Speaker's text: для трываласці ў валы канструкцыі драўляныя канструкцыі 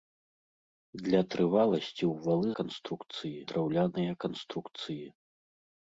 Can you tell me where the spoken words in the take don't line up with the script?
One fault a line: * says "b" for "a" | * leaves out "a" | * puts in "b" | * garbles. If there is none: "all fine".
all fine